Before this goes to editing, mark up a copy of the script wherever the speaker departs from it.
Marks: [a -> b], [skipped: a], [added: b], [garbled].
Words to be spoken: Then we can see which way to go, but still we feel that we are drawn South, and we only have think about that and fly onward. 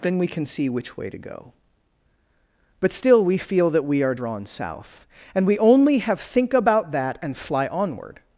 Then we can see which way to go, but still we feel that we are drawn South, and we only have think about that and fly onward.